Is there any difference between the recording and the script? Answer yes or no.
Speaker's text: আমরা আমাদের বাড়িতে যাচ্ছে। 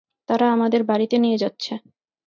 yes